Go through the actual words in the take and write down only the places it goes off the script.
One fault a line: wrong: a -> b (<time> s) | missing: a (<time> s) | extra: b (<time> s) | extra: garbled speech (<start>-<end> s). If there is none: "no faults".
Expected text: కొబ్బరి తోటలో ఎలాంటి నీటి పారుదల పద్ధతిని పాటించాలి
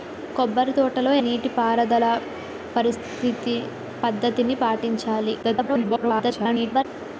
missing: ఎలాంటి (1.1 s)
extra: garbled speech (5.4-6.8 s)